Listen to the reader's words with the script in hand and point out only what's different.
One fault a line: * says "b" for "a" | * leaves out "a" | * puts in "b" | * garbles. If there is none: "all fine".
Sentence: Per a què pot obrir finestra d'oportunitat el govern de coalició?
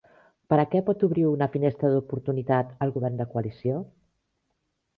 * puts in "una"